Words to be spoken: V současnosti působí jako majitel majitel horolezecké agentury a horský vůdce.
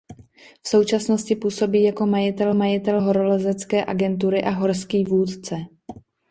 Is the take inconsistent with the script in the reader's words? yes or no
no